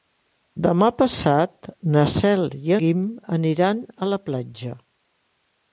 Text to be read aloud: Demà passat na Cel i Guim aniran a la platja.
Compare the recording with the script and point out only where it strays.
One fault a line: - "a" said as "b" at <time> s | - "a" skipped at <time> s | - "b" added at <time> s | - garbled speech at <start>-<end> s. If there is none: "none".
none